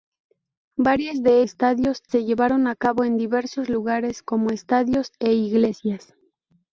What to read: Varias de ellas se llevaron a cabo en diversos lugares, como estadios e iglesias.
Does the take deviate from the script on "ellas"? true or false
true